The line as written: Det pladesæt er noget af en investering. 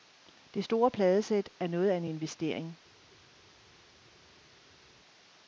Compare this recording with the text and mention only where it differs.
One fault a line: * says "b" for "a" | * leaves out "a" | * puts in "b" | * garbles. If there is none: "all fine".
* puts in "store"